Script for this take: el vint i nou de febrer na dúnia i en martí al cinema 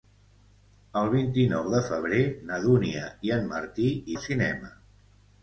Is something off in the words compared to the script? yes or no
no